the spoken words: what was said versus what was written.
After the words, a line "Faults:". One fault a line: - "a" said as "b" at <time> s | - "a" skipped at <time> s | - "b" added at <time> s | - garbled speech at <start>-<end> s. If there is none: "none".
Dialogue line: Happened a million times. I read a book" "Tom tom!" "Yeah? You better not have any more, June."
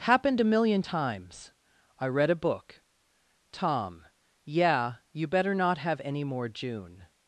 Happened a million times. I read a book" "Tom!" "Yeah? You better not have any more, June."
Faults:
- "tom" skipped at 4.0 s